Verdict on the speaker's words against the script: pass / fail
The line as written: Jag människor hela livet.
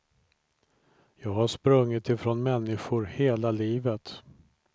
fail